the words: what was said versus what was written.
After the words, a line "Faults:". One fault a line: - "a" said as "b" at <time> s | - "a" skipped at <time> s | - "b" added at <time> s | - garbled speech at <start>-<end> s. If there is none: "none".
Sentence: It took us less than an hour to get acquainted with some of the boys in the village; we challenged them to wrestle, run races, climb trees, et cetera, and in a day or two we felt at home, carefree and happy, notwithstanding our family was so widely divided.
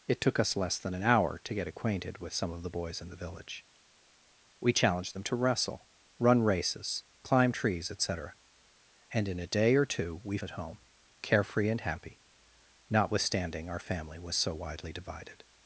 It took us less than an hour to get acquainted with some of the boys in the village; we challenged them to wrestle, run races, climb trees, et cetera, and in a day or two we at home, carefree and happy, notwithstanding our family was so widely divided.
Faults:
- "felt" skipped at 10.4 s